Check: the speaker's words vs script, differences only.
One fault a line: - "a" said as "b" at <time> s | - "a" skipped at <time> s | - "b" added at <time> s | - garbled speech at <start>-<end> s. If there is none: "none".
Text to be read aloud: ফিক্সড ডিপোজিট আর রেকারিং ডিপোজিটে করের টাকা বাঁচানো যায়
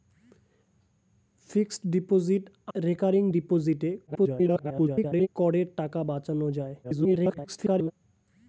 - "আর" skipped at 2.4 s
- garbled speech at 4.1-5.3 s
- garbled speech at 6.8-7.9 s